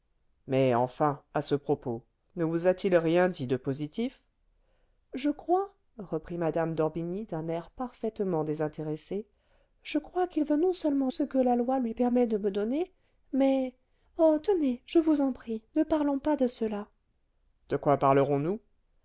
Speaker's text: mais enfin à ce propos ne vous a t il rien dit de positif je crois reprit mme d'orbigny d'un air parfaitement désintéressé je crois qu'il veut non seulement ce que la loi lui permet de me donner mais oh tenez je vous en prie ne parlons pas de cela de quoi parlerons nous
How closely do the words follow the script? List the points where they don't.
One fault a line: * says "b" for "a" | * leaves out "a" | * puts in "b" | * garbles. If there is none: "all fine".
all fine